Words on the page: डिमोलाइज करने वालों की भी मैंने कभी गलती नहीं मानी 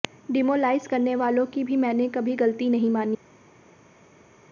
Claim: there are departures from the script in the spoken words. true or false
false